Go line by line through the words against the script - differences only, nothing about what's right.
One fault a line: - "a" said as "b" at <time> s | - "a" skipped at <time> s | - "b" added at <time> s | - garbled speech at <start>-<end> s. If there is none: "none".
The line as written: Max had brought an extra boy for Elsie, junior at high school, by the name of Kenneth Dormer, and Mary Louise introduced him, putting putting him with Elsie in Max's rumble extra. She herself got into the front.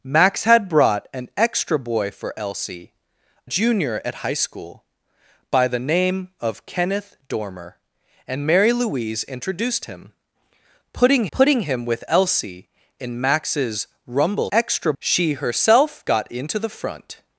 none